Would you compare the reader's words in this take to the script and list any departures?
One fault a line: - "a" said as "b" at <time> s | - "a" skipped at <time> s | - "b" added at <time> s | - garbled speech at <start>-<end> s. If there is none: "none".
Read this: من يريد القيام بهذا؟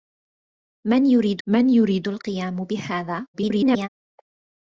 - "من يريد" added at 1.5 s
- garbled speech at 3.3-3.9 s